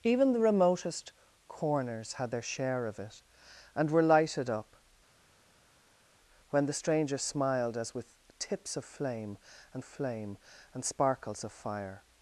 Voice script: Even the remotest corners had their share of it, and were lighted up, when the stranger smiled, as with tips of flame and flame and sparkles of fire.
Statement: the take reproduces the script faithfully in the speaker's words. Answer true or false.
true